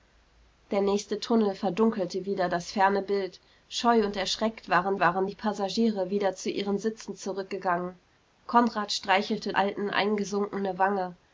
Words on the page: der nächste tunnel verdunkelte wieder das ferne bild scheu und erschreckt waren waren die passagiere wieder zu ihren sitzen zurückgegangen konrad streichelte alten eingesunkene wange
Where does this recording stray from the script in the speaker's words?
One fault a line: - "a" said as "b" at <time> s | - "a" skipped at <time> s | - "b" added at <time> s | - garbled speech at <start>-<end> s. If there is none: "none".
none